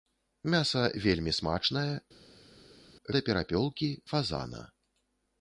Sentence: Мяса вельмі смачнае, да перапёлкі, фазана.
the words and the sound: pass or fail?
pass